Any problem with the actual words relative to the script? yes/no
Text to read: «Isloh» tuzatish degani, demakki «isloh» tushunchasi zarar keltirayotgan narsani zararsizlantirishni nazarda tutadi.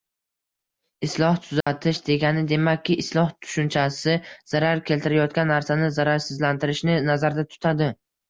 no